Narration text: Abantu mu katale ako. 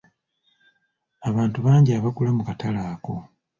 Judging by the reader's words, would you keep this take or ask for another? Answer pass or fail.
fail